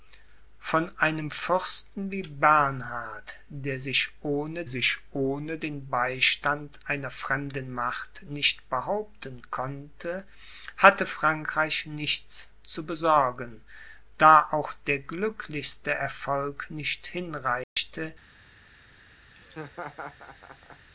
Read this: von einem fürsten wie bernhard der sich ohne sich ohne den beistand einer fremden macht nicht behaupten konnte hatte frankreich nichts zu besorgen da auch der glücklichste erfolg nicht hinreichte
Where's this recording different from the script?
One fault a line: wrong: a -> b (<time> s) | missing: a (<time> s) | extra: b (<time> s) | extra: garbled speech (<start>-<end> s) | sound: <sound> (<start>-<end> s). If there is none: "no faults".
sound: dropout (17.6-17.8 s)
sound: laugh (19.4-20.9 s)